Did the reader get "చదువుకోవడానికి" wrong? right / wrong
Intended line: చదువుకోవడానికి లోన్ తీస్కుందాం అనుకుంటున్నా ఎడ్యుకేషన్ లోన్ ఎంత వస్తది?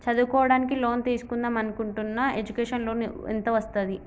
right